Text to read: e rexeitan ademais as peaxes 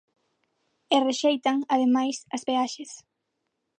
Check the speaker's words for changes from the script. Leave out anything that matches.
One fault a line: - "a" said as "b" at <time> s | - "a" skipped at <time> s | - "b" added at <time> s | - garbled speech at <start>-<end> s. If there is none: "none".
none